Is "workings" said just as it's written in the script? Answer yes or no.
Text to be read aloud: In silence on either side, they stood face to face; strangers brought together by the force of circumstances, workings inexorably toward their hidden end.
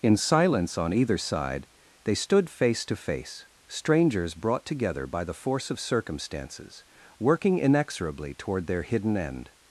no